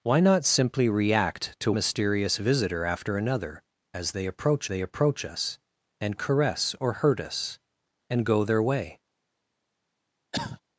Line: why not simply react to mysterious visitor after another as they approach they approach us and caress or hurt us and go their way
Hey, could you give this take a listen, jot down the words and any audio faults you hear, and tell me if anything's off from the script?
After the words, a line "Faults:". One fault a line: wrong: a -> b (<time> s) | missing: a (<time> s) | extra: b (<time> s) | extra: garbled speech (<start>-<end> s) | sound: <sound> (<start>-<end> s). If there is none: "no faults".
why not simply react to mysterious visitor after another as they approach they approach us and caress or hurt us and go their way
Faults:
sound: cough (10.3-10.6 s)